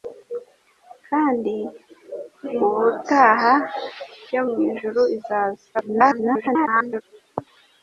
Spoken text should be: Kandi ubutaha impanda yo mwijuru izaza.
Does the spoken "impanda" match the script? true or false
false